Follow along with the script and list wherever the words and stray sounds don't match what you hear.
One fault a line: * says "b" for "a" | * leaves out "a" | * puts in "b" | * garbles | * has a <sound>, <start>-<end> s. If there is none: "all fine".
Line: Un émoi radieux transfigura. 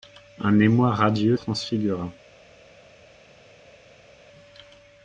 all fine